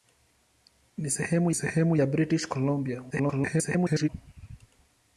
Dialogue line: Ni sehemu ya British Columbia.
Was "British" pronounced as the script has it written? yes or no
yes